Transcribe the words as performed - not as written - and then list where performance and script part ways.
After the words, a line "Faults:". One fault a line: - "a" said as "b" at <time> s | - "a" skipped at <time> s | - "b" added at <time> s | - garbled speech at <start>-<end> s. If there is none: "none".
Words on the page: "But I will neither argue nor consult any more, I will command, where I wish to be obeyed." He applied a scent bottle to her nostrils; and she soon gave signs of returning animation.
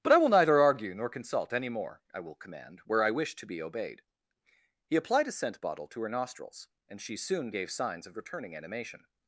"But I will neither argue nor consult any more, I will command, where I wish to be obeyed." He applied a scent bottle to her nostrils; and she soon gave signs of returning animation.
Faults:
none